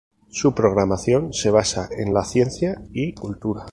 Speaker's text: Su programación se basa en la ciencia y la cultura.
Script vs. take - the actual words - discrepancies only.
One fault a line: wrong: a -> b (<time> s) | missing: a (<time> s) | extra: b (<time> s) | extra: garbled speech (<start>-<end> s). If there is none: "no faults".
missing: la (3.1 s)